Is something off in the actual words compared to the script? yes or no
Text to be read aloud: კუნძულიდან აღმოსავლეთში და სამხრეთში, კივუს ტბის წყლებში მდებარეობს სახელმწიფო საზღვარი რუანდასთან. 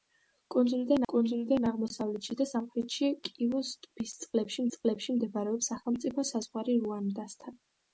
yes